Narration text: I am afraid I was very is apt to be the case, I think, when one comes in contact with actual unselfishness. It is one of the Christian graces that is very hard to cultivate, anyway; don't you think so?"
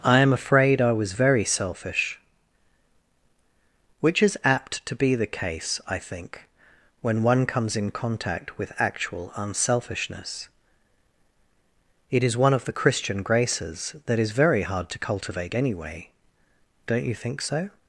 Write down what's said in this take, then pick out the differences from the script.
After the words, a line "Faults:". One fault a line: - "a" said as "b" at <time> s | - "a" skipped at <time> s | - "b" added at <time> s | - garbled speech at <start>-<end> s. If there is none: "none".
I am afraid I was very selfish; which is apt to be the case, I think, when one comes in contact with actual unselfishness. It is one of the Christian graces that is very hard to cultivate, anyway; don't you think so?"
Faults:
- "selfish which" added at 1.4 s